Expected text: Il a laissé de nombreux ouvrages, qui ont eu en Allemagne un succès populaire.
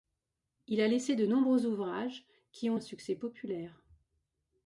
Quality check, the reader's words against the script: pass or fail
fail